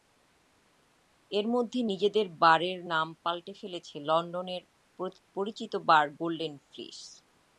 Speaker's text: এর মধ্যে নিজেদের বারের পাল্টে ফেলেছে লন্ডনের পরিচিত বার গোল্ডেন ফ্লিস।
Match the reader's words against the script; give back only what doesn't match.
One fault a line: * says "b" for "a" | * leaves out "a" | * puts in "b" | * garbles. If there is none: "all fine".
* puts in "নাম"